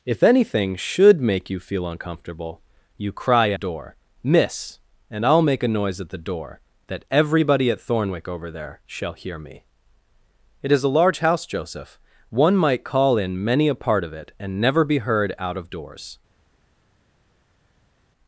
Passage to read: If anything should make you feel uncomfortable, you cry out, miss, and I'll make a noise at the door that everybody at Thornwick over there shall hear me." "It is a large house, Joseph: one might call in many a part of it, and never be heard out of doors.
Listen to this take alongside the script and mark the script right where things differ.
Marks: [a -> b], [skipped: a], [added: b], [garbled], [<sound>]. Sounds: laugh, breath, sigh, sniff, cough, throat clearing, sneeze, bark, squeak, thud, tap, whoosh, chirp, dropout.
If anything should make you feel uncomfortable, you cry [out, -> door] miss, and I'll make a noise at the door that everybody at Thornwick over there shall hear me." "It is a large house, Joseph: one might call in many a part of it, and never be heard out of doors.